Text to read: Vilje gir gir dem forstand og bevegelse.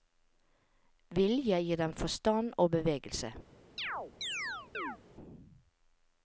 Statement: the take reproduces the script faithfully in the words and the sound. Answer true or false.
false